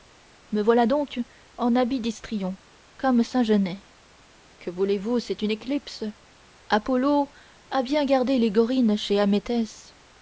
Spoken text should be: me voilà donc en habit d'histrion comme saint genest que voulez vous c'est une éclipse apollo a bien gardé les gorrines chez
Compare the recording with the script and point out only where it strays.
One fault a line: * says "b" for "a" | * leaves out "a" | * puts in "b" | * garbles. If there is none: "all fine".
all fine